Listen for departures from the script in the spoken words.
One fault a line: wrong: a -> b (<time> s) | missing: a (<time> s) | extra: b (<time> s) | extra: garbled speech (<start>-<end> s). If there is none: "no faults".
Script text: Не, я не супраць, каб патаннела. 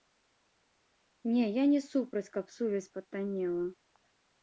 extra: сувязь (2.6 s)